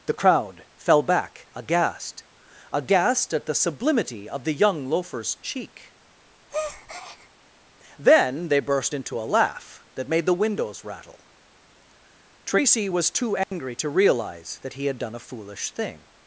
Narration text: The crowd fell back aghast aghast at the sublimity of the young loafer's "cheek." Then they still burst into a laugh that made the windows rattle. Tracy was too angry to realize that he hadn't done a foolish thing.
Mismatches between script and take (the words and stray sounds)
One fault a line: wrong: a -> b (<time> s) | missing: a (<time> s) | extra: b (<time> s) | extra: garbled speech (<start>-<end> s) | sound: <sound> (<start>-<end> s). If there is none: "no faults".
sound: breath (6.5-7.3 s)
missing: still (8.6 s)
sound: dropout (13.4-13.5 s)
wrong: hadn't -> had (14.8 s)